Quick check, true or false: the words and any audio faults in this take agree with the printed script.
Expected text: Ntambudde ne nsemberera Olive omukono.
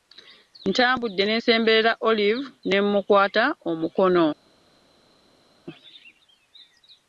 false